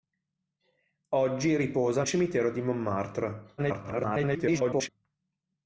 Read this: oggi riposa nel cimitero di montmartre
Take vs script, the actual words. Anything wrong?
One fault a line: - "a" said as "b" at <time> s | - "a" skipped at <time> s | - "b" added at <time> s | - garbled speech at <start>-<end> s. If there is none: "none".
- "nel" skipped at 2.0 s
- garbled speech at 3.6-4.9 s